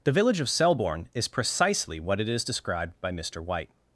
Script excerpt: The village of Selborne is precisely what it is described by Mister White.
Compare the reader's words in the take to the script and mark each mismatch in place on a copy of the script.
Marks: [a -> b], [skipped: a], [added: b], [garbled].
The village of Selborne is precisely what it is described by Mister White.